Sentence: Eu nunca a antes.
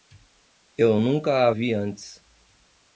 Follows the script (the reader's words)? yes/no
no